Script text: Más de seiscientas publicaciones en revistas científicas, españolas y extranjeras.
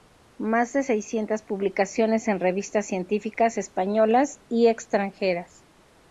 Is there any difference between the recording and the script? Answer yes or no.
no